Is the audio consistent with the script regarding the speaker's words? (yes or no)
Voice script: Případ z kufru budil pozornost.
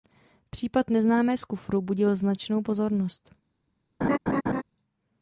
no